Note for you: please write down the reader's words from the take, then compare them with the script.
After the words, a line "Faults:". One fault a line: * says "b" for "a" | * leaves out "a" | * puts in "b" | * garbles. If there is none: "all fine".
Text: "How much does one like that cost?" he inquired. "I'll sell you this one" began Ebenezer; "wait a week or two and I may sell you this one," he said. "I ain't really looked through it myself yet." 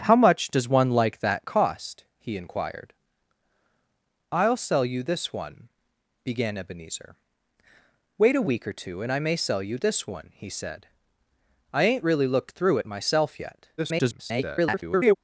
"How much does one like that cost?" he inquired. "I'll sell you this one" began Ebenezer; "wait a week or two and I may sell you this one," he said. "I ain't really looked through it myself yet." [garbled]
Faults:
* garbles